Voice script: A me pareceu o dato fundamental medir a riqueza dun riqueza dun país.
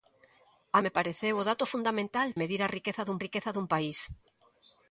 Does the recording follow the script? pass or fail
pass